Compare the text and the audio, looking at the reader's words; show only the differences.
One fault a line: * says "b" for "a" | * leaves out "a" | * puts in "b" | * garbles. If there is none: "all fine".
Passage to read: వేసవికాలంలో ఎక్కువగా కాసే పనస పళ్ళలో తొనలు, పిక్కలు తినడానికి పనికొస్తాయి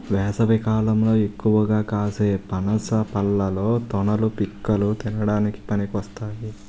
all fine